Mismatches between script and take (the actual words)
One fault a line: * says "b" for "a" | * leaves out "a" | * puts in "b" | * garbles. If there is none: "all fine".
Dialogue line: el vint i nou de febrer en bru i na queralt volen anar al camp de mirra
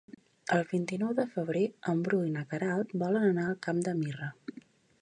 all fine